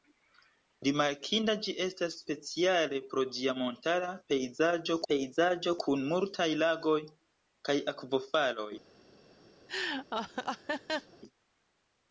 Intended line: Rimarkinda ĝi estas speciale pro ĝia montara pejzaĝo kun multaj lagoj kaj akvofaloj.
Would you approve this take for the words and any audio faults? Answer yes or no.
no